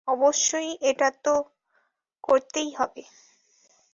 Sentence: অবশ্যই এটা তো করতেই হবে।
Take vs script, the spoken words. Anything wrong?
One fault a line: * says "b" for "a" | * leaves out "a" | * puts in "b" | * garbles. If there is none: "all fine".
all fine